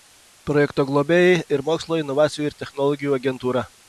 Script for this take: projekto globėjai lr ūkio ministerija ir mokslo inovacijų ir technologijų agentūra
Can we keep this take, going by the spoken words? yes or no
no